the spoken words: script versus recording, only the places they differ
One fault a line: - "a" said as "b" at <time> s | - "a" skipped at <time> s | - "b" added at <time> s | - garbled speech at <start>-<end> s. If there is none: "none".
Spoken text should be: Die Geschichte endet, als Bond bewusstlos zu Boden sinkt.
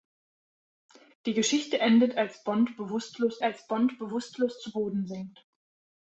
- "als Bond bewusstlos" added at 3.4 s